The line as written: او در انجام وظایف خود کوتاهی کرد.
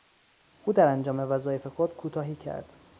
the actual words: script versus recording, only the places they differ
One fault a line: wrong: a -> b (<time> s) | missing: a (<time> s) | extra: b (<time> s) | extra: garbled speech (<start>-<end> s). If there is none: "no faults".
no faults